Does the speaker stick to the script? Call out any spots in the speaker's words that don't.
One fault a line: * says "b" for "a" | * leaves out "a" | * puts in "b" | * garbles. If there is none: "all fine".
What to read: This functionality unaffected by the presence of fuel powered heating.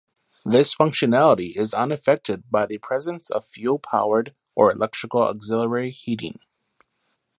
* puts in "is"
* puts in "or electrical auxiliary"